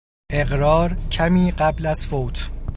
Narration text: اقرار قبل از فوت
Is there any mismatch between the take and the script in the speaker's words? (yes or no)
yes